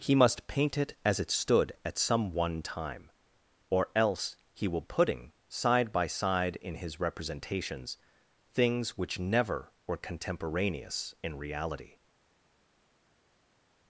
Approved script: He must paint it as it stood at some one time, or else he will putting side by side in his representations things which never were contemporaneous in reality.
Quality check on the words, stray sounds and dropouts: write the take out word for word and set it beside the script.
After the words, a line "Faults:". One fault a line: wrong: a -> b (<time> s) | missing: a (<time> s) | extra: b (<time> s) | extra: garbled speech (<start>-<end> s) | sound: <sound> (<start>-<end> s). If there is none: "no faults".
He must paint it as it stood at some one time, or else he will putting side by side in his representations things which never were contemporaneous in reality.
Faults:
no faults